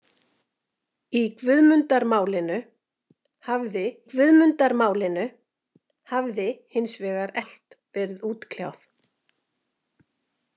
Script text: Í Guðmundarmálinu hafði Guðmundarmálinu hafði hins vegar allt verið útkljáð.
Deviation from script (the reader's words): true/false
false